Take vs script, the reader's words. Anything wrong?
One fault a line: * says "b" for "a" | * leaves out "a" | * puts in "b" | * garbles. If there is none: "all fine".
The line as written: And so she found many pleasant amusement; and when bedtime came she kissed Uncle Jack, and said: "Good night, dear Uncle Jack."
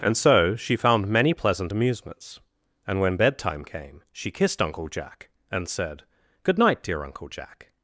* says "amusements" for "amusement"